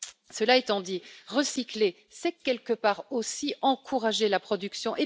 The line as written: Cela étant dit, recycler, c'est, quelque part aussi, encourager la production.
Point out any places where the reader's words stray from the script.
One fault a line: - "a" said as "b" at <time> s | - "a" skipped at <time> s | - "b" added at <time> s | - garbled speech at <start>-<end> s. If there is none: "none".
none